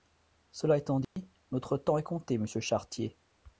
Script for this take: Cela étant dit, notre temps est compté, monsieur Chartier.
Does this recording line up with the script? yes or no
yes